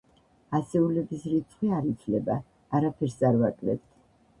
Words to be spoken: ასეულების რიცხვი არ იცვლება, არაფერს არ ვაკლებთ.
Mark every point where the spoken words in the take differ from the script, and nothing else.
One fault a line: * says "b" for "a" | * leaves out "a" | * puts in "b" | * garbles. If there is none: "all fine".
all fine